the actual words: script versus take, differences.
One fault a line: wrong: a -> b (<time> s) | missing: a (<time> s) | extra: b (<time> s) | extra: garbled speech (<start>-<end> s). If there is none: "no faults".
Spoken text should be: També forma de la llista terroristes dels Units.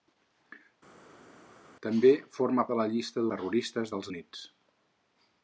no faults